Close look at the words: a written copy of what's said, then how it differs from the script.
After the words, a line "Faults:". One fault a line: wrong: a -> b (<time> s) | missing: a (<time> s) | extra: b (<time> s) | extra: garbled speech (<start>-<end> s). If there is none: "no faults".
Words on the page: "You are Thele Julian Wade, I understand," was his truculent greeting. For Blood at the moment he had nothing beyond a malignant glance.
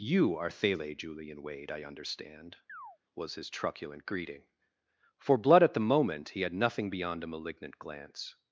"You are Thele Julian Wade, I understand," was his truculent greeting. For Blood at the moment he had nothing beyond a malignant glance.
Faults:
no faults